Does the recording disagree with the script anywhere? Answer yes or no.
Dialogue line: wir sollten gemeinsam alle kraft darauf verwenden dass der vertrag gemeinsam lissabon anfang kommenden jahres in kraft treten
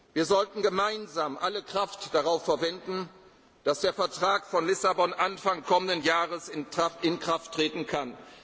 yes